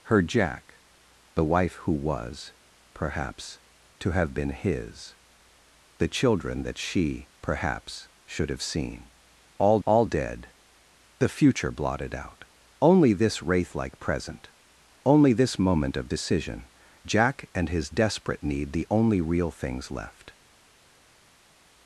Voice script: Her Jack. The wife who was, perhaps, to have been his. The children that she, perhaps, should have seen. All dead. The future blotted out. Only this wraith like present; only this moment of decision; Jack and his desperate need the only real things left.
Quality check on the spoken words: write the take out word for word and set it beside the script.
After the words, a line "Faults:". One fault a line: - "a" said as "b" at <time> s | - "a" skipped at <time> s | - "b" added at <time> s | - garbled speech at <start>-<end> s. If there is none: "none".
Her Jack. The wife who was, perhaps, to have been his. The children that she, perhaps, should have seen. All all dead. The future blotted out. Only this wraith like present; only this moment of decision; Jack and his desperate need the only real things left.
Faults:
- "all" added at 9.8 s